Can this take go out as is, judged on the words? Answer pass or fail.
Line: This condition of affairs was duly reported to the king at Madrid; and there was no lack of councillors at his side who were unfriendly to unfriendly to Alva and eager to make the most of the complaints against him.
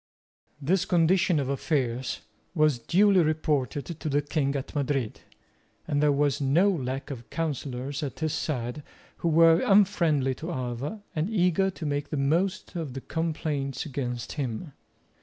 fail